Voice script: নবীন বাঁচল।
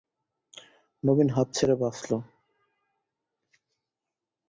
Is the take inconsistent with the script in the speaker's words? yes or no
yes